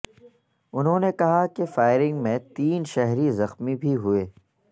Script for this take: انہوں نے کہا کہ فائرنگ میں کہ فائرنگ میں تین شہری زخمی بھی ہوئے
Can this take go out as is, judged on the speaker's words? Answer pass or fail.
fail